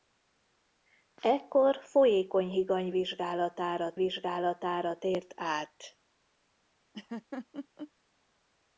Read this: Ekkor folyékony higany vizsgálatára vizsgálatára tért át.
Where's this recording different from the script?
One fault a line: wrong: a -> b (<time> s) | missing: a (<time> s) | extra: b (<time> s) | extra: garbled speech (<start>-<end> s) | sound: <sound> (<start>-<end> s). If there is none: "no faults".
sound: laugh (6.9-7.9 s)